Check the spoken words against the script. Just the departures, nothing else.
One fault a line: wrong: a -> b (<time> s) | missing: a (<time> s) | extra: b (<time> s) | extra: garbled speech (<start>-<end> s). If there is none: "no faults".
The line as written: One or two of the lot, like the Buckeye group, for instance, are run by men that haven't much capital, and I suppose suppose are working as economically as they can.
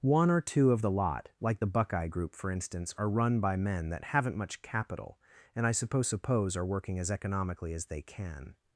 no faults